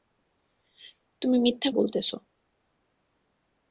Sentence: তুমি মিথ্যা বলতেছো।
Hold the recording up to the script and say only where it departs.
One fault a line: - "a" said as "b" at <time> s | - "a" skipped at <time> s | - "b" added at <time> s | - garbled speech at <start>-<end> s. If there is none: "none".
none